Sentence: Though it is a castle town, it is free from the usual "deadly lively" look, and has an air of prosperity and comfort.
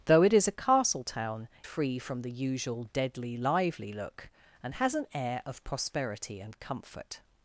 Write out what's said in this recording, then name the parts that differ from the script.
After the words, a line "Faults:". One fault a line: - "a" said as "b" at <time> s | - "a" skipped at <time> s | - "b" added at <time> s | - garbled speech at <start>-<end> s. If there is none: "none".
Though it is a castle town, free from the usual "deadly lively" look, and has an air of prosperity and comfort.
Faults:
- "it is" skipped at 1.5 s